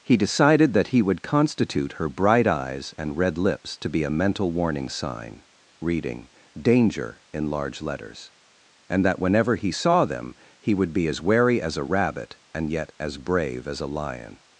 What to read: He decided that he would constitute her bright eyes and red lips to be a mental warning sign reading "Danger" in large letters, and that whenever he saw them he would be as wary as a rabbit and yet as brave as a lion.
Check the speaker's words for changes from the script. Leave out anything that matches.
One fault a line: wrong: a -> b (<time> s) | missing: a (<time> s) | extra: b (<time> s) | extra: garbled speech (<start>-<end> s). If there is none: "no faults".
no faults